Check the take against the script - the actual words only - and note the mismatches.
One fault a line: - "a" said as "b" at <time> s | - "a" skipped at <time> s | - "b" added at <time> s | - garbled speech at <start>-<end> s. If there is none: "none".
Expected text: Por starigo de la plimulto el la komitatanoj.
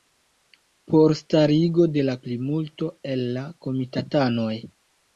none